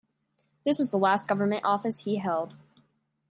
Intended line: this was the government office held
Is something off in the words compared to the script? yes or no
yes